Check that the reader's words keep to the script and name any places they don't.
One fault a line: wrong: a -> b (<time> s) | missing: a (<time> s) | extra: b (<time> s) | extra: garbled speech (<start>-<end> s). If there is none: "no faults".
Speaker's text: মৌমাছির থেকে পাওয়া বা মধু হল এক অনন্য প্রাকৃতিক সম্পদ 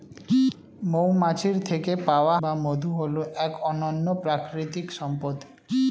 no faults